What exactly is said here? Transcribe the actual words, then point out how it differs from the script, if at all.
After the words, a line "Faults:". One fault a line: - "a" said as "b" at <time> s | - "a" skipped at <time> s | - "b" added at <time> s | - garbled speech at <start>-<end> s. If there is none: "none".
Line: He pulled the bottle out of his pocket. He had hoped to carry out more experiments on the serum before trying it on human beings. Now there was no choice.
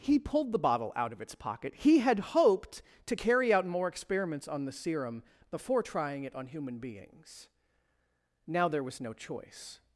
He pulled the bottle out of its pocket. He had hoped to carry out more experiments on the serum before trying it on human beings. Now there was no choice.
Faults:
- "his" said as "its" at 1.2 s